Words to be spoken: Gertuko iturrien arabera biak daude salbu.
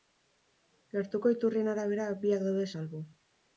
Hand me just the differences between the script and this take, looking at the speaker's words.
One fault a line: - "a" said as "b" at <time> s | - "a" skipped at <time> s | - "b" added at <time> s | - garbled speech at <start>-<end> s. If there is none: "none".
none